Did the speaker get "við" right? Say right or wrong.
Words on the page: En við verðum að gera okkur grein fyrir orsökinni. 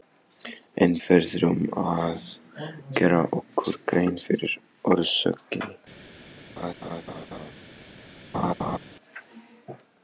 wrong